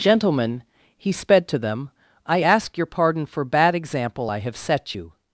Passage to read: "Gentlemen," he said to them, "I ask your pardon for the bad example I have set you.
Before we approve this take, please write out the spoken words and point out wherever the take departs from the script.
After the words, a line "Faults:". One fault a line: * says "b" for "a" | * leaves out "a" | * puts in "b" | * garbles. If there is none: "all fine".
"Gentlemen," he sped to them, "I ask your pardon for bad example I have set you.
Faults:
* says "sped" for "said"
* leaves out "the"